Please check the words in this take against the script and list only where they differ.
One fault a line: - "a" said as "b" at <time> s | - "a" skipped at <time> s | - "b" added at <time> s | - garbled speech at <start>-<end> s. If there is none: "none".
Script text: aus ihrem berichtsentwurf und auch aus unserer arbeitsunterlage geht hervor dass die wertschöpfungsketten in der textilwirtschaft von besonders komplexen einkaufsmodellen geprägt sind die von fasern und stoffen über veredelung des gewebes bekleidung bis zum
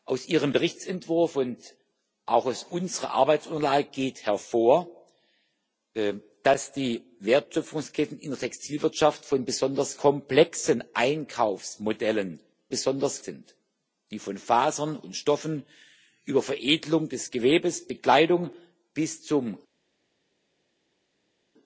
- "geprägt" said as "besonders" at 12.7 s